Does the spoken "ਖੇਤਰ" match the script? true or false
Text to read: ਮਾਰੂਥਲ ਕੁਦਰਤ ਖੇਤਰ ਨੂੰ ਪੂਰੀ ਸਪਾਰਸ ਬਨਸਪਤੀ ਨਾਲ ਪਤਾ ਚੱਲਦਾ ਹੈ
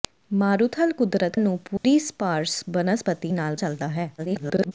false